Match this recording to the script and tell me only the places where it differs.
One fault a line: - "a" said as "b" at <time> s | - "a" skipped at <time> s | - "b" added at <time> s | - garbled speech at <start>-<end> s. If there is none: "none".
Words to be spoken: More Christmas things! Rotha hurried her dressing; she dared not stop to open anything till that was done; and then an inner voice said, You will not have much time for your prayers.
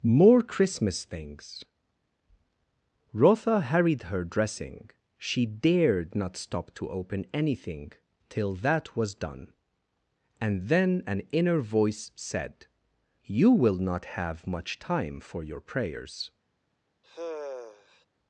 none